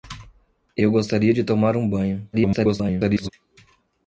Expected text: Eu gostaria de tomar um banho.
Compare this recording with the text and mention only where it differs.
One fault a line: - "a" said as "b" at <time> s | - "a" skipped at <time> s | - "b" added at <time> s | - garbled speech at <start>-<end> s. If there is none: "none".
- garbled speech at 2.3-3.3 s